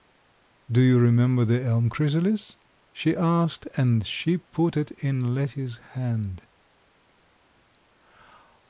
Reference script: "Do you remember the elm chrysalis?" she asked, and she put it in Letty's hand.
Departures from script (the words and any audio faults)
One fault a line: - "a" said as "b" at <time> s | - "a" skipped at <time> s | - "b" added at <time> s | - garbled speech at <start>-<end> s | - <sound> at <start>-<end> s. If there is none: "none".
none